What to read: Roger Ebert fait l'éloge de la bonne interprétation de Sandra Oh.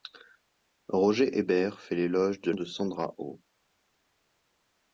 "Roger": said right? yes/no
yes